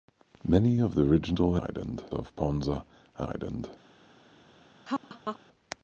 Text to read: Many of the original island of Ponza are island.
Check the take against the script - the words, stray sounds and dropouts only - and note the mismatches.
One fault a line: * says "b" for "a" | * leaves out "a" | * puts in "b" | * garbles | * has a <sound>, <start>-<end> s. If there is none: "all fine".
* has a laugh, 4.9-5.4 s